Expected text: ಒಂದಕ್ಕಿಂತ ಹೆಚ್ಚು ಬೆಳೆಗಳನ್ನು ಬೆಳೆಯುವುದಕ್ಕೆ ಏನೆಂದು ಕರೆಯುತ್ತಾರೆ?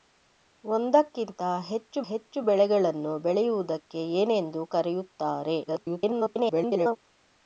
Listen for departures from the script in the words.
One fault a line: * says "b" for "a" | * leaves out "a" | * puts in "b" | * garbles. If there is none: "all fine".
* puts in "ಹೆಚ್ಚು"
* garbles